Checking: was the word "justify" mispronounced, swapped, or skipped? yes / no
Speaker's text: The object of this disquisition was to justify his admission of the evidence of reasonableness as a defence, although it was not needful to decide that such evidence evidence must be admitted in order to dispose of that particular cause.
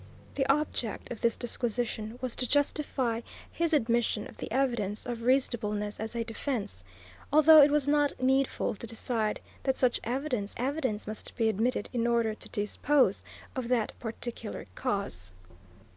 no